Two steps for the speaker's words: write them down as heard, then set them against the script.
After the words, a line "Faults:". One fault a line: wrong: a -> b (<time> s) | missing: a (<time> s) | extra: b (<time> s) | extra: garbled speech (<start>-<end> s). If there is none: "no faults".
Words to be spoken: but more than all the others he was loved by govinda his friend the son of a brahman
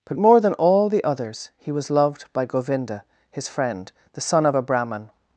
but more than all the others he was loved by govinda his friend the son of a brahman
Faults:
no faults